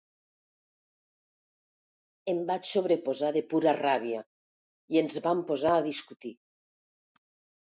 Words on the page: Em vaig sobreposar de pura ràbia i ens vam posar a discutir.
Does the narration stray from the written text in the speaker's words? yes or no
no